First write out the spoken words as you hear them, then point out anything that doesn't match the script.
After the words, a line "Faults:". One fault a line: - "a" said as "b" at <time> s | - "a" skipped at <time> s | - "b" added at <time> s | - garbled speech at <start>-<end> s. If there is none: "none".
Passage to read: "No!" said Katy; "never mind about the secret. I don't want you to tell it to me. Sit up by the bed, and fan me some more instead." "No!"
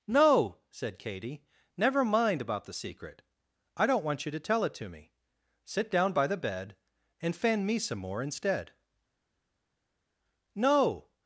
"No!" said Katy; "never mind about the secret. I don't want you to tell it to me. Sit down by the bed, and fan me some more instead." "No!"
Faults:
- "up" said as "down" at 5.9 s